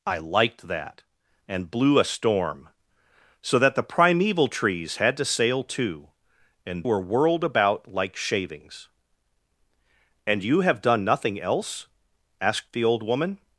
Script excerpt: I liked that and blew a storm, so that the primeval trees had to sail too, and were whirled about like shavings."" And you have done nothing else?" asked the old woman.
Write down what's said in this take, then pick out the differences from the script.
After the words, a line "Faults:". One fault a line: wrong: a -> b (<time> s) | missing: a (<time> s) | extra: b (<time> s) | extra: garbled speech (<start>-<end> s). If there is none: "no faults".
I liked that and blew a storm, so that the primeval trees had to sail too, and were whirled about like shavings."" And you have done nothing else?" asked the old woman.
Faults:
no faults